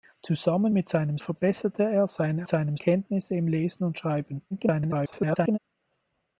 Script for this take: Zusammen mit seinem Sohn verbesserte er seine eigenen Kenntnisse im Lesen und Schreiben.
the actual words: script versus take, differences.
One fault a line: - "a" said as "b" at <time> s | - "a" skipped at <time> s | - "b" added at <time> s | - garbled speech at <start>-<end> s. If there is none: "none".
- "Sohn" skipped at 1.2 s
- "eigenen" said as "seinem" at 2.5 s
- garbled speech at 4.5-5.6 s